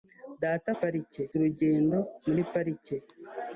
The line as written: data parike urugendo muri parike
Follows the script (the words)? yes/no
yes